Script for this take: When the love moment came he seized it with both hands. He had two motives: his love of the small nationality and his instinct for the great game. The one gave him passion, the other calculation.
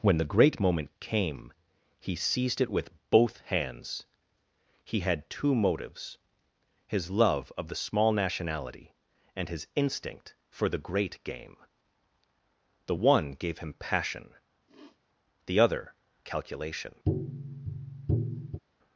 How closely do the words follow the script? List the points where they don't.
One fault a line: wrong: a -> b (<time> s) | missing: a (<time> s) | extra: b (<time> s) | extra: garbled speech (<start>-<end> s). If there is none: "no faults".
wrong: love -> great (0.2 s)